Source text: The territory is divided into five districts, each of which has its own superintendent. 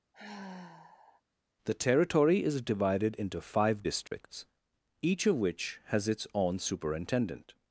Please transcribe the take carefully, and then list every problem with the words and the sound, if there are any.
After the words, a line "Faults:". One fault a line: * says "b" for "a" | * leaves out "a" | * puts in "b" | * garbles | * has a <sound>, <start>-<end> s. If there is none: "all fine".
The territory is divided into five districts, each of which has its own superintendent.
Faults:
* has a sigh, 0.1-1.2 s
* has a dropout, 4.1-4.1 s